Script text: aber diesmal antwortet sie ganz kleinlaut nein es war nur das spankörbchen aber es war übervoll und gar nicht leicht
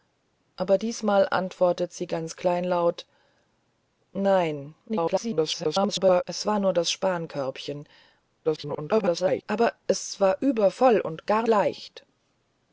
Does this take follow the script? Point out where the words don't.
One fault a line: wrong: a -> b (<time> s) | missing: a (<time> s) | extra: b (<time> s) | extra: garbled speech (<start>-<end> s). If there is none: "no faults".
extra: garbled speech (4.9-6.2 s)
extra: garbled speech (8.4-9.4 s)
missing: nicht (11.5 s)